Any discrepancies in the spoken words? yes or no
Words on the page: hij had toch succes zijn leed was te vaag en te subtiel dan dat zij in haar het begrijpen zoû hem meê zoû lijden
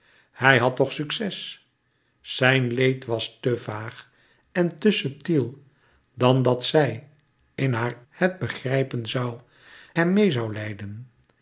no